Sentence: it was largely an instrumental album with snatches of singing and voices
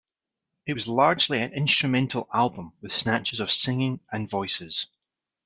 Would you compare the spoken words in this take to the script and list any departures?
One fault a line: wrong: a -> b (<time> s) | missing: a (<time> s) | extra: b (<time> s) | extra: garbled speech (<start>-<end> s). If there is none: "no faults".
no faults